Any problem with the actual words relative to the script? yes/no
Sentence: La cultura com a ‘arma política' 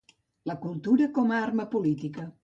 no